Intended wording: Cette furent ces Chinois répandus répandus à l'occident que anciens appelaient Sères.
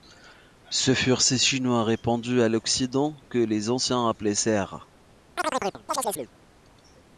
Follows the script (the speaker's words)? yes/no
no